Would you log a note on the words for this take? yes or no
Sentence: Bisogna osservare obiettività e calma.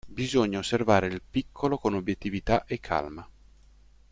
yes